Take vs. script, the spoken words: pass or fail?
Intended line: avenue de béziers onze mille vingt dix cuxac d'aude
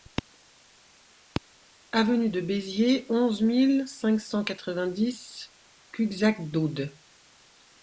fail